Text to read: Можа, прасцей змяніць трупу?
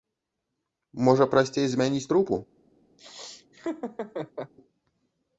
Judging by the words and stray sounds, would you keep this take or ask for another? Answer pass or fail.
fail